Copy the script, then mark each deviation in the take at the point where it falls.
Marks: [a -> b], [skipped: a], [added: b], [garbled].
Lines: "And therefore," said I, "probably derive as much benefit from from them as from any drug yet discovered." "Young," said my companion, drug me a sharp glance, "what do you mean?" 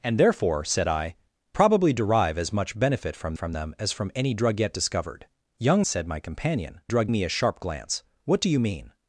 "And therefore," said I, "probably derive as much benefit from from them as from any drug yet discovered." "Young," said my companion, drug me a sharp glance, "what do you mean?"